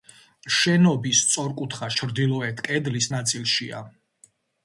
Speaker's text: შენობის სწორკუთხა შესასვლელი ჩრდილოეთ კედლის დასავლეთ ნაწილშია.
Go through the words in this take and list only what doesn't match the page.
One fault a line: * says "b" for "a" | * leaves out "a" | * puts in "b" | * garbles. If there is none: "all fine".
* leaves out "შესასვლელი"
* leaves out "დასავლეთ"